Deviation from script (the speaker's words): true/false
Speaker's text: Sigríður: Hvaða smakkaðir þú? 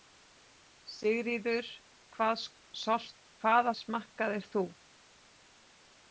false